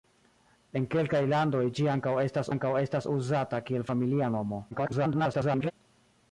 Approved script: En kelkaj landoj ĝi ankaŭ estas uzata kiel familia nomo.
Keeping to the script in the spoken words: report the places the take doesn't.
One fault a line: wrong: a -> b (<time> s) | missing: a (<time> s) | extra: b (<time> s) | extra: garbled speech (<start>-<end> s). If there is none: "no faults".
extra: ankaŭ estas (2.6 s)
extra: garbled speech (4.7-5.7 s)